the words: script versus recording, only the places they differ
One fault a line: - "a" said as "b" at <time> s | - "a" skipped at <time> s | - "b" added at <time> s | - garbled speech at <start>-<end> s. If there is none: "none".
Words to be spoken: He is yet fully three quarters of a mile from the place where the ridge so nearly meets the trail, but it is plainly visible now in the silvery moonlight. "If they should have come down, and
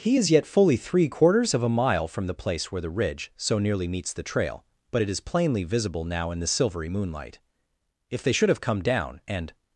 none